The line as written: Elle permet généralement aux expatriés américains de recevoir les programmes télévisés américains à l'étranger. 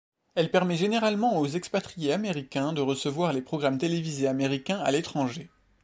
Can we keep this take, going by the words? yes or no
yes